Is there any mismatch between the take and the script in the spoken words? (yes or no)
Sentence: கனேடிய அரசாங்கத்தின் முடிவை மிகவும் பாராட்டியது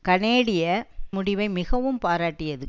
yes